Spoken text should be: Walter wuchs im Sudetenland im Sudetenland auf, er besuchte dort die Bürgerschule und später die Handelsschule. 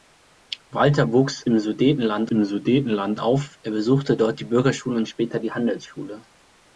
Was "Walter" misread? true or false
false